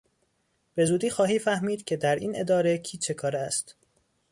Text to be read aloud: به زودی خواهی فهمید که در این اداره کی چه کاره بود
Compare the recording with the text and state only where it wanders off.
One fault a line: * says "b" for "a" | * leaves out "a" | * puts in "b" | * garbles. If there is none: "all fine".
* says "است" for "بود"